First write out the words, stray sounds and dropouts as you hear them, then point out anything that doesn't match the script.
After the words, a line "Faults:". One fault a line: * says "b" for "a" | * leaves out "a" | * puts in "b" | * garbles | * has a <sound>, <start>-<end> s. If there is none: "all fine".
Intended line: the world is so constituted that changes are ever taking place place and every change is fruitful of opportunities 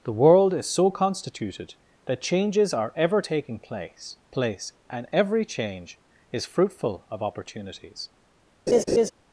the world is so constituted that changes are ever taking place place and every change is fruitful of opportunities
Faults:
* has a laugh, 8.7-9.1 s